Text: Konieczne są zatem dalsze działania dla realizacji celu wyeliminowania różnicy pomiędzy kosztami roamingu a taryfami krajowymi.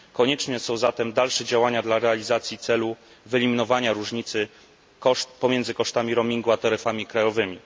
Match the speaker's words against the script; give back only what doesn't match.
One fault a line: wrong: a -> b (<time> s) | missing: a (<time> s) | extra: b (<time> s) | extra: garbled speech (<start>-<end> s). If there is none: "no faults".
no faults